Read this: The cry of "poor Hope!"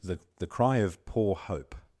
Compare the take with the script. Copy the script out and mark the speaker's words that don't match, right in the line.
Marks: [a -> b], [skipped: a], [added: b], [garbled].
The [added: the] cry of "poor Hope!"